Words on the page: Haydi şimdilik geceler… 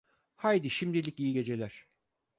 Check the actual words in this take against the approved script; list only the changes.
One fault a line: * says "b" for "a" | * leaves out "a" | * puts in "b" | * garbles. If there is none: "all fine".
* puts in "iyi"